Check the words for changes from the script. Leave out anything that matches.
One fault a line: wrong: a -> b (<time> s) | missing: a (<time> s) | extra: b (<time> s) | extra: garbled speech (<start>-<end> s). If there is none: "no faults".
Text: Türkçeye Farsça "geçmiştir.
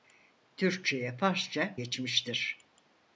no faults